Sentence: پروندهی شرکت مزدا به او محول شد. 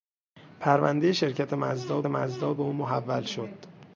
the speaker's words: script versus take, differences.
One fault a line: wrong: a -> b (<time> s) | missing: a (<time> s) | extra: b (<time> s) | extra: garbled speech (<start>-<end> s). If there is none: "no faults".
extra: مزدا (2.1 s)